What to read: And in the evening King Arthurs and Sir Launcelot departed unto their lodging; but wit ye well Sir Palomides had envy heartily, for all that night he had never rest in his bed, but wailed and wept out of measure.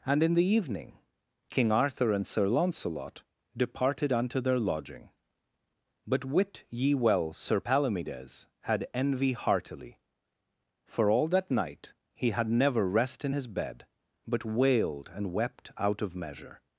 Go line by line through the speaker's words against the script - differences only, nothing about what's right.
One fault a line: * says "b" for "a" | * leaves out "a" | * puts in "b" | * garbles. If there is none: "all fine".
* says "Arthur" for "Arthurs"